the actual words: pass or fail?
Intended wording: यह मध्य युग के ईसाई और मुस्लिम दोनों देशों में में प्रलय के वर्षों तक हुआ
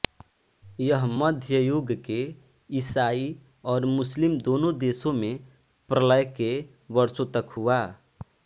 fail